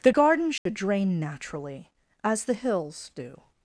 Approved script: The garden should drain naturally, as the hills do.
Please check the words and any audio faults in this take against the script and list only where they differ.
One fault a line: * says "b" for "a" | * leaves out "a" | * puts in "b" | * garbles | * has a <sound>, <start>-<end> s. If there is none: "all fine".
* has a dropout, 0.6-0.7 s